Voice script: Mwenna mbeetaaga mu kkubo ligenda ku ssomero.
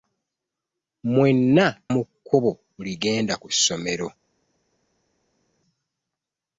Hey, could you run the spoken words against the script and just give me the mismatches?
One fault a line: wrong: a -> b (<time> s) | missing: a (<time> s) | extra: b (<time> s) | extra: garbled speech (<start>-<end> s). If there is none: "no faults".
missing: mbeetaaga (1.6 s)